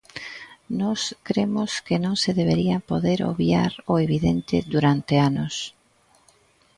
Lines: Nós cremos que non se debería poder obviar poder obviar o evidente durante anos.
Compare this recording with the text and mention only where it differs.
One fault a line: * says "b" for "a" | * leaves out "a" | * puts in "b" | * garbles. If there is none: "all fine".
* leaves out "poder obviar"